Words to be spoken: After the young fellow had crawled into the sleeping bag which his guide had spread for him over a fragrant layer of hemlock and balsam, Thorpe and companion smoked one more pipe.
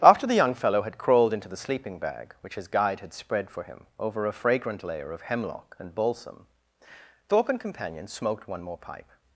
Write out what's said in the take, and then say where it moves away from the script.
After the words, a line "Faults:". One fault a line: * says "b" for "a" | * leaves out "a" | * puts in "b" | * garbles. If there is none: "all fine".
After the young fellow had crawled into the sleeping bag which his guide had spread for him over a fragrant layer of hemlock and balsam, Thorpe and companion smoked one more pipe.
Faults:
all fine